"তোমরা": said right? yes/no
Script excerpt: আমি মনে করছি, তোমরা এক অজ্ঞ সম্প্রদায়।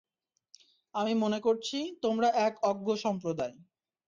yes